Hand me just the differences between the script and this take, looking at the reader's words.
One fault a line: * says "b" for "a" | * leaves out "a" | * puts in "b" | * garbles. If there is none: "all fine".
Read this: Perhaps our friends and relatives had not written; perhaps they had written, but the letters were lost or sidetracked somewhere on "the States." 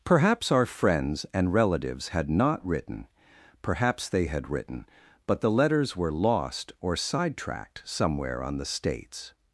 all fine